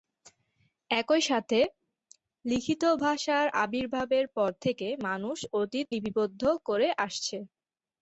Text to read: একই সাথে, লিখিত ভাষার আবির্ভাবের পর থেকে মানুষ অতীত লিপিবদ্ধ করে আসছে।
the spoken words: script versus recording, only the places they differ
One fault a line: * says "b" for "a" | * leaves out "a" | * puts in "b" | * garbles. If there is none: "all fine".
all fine